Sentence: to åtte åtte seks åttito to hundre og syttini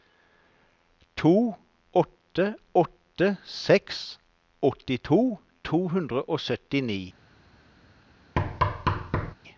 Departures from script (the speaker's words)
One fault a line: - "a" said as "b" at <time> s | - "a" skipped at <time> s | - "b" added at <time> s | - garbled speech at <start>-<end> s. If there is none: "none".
none